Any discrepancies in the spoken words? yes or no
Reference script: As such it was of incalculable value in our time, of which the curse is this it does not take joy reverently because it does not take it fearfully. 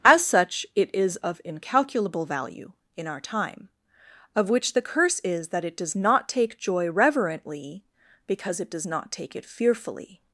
yes